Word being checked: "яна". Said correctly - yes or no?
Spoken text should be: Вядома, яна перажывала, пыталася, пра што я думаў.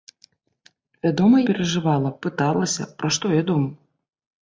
no